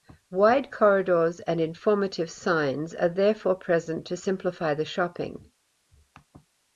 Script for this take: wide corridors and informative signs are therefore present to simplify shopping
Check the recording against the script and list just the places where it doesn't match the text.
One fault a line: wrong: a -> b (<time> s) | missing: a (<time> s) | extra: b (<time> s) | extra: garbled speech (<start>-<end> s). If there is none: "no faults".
extra: the (4.7 s)